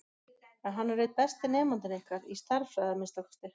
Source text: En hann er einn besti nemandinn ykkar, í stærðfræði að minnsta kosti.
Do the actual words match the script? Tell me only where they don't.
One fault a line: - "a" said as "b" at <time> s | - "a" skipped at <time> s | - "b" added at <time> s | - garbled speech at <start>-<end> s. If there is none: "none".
none